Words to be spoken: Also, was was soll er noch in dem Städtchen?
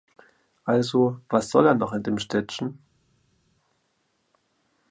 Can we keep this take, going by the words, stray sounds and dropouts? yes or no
no